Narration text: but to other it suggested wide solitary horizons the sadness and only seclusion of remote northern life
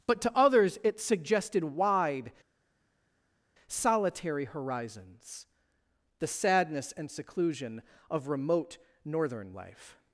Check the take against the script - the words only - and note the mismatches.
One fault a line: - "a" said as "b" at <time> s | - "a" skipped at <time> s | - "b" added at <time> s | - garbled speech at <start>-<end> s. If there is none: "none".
- "other" said as "others" at 0.4 s
- "only" skipped at 7.1 s